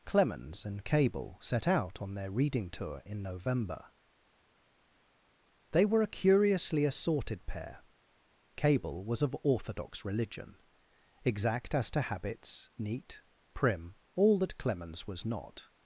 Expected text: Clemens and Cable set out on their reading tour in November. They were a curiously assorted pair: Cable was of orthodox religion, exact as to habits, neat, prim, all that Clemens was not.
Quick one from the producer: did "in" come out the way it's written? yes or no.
yes